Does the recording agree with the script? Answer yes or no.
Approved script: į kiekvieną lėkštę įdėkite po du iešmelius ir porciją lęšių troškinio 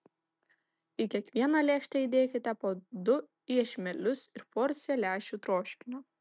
yes